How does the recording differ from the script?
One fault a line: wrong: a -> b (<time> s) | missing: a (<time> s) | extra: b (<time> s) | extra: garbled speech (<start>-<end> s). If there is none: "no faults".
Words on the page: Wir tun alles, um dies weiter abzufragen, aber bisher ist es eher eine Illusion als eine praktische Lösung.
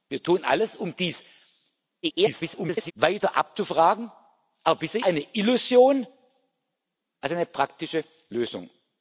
extra: garbled speech (2.0-2.9 s)
missing: ist es eher (5.0 s)